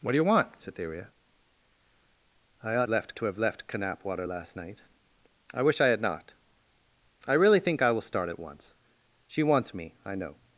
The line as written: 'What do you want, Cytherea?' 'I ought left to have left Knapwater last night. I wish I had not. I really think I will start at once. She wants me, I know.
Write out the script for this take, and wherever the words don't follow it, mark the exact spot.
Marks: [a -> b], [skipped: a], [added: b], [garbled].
'What do you want, Cytherea?' 'I ought left to have left Knapwater last night. I wish I had not. I really think I will start at once. She wants me, I know.